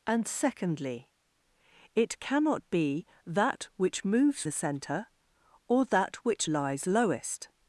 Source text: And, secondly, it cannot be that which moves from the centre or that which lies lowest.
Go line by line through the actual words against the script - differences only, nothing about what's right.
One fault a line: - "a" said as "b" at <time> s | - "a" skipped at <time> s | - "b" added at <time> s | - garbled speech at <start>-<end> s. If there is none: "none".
- "from" skipped at 4.4 s